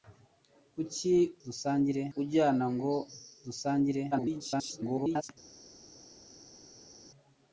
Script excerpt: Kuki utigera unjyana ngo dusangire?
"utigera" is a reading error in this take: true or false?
true